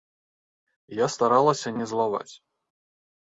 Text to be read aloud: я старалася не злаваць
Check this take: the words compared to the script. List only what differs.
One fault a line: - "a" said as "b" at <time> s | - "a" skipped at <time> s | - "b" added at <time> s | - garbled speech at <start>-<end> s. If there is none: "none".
none